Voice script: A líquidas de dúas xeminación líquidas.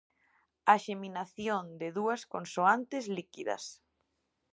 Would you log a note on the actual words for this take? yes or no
yes